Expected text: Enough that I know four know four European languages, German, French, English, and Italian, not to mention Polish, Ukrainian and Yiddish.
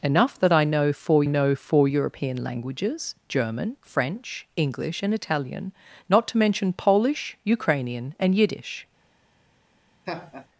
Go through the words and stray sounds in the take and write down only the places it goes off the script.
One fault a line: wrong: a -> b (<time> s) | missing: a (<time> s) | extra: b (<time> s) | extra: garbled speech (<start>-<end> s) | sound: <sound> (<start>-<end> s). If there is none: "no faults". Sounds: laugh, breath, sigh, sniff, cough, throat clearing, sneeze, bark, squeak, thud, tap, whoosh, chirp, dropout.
sound: laugh (10.1-10.5 s)